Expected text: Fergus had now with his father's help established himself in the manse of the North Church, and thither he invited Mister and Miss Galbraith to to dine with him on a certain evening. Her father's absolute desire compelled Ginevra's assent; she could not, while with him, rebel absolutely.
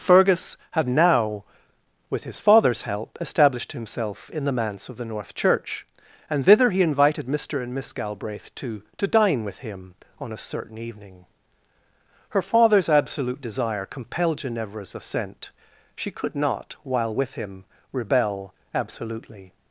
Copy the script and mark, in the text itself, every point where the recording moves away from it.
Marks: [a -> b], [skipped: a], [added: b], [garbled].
Fergus had now with his father's help established himself in the manse of the North Church, and thither he invited Mister and Miss Galbraith to to dine with him on a certain evening. Her father's absolute desire compelled Ginevra's assent; she could not, while with him, rebel absolutely.